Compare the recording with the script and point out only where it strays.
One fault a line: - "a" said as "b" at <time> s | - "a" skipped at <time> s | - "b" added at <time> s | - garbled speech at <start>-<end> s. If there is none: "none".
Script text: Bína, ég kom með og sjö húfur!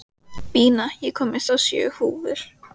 none